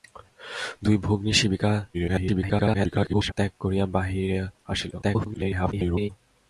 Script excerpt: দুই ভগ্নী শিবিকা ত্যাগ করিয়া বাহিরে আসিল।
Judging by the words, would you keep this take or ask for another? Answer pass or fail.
fail